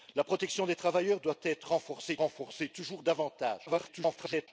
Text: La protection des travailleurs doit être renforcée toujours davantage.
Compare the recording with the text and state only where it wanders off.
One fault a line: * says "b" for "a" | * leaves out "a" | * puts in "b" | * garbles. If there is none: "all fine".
* puts in "renforcée"
* garbles